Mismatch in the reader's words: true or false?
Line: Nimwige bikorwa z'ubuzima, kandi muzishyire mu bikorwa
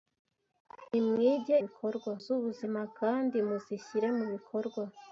false